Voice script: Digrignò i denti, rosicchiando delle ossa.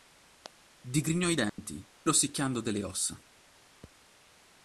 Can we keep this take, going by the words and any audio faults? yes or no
no